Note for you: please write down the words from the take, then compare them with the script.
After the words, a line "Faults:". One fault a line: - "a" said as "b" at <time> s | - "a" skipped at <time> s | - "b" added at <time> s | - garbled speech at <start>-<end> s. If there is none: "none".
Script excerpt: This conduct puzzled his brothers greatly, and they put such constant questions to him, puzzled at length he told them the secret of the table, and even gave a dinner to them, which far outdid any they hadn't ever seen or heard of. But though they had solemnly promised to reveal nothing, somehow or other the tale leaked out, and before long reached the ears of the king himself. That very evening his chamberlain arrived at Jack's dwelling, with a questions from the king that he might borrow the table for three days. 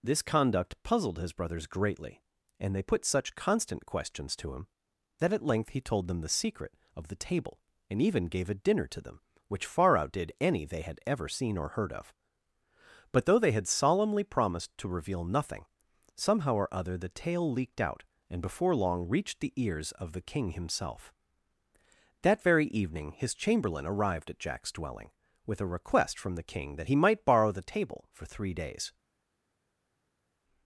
This conduct puzzled his brothers greatly, and they put such constant questions to him, that at length he told them the secret of the table, and even gave a dinner to them, which far outdid any they had ever seen or heard of. But though they had solemnly promised to reveal nothing, somehow or other the tale leaked out, and before long reached the ears of the king himself. That very evening his chamberlain arrived at Jack's dwelling, with a request from the king that he might borrow the table for three days.
Faults:
- "puzzled" said as "that" at 5.2 s
- "hadn't" said as "had" at 10.8 s
- "questions" said as "request" at 25.7 s